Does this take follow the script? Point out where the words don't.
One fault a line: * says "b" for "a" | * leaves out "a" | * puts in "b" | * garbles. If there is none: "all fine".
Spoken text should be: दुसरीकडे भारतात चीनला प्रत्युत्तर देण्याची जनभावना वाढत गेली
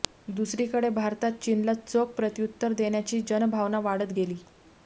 * puts in "चोख"